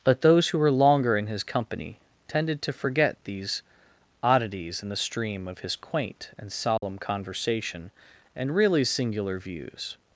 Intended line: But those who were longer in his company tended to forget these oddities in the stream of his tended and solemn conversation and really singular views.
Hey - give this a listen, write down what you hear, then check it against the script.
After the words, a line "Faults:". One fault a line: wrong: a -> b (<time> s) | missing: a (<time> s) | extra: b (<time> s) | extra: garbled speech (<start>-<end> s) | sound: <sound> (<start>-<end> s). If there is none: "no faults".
But those who were longer in his company tended to forget these oddities in the stream of his quaint and solemn conversation and really singular views.
Faults:
wrong: tended -> quaint (5.8 s)
sound: dropout (6.8-6.8 s)